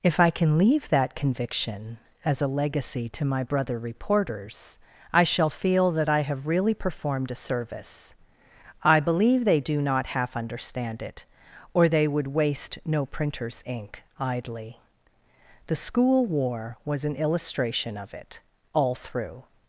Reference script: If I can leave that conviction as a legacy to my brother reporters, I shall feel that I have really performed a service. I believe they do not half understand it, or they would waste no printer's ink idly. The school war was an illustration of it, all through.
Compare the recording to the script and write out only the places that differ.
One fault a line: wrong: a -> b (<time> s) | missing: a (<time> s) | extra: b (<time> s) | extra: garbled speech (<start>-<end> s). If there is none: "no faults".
no faults